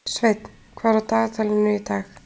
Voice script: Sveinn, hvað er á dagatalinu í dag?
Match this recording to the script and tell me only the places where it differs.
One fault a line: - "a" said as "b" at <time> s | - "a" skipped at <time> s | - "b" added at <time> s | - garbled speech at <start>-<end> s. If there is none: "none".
none